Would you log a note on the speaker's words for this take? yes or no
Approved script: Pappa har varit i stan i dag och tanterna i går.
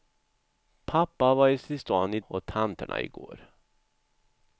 yes